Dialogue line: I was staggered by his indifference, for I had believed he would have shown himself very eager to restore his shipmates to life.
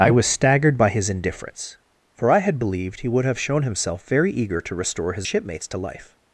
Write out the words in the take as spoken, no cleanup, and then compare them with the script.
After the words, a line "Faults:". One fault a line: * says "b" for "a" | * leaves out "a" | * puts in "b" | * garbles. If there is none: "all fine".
I was staggered by his indifference, for I had believed he would have shown himself very eager to restore his shipmates to life.
Faults:
all fine